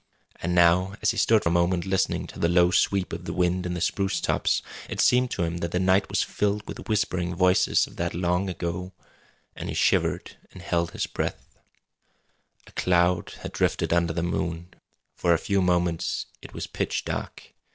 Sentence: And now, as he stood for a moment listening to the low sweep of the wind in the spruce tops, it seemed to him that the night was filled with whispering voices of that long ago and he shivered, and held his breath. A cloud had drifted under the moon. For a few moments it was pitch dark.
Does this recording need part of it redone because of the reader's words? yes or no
yes